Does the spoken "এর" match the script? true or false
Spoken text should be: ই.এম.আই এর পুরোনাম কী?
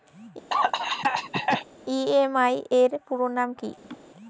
true